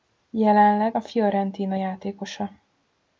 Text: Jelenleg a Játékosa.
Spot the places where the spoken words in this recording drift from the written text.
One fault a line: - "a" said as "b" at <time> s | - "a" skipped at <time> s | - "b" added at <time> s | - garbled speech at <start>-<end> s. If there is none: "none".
- "Fiorentina" added at 1.0 s